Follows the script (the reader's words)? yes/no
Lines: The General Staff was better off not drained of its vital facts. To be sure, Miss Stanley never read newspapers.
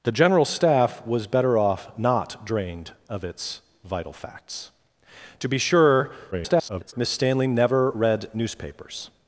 no